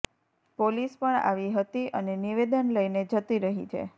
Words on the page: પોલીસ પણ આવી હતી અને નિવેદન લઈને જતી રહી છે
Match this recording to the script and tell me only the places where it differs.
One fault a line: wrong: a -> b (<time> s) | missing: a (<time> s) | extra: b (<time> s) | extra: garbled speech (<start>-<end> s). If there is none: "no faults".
no faults